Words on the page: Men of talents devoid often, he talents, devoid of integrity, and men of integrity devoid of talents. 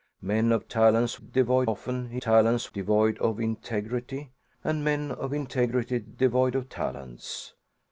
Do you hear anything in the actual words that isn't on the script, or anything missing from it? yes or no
no